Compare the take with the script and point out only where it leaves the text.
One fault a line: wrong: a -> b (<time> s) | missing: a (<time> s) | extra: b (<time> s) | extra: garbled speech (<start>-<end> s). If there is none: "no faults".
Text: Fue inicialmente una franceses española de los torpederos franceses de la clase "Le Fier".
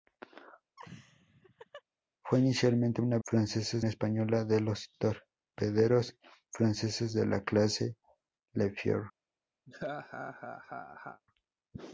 no faults